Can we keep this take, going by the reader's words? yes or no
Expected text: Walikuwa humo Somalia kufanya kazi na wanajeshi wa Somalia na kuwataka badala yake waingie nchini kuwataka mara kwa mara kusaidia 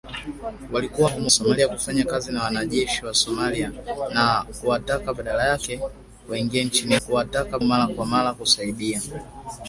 yes